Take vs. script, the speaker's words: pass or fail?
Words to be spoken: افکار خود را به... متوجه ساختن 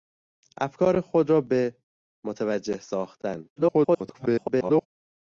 fail